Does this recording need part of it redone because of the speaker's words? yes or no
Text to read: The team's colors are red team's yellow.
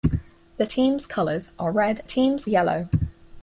no